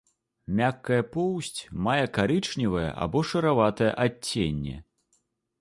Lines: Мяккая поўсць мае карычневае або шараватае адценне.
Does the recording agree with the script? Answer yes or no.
yes